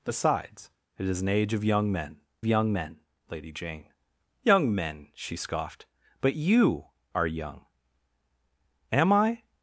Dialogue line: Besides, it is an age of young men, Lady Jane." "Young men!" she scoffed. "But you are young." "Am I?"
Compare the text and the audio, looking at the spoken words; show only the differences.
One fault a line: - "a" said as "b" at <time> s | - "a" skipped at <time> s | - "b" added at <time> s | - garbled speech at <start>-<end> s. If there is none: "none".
- "young men" added at 2.5 s